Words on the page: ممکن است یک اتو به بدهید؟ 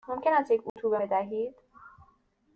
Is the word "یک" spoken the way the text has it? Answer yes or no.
yes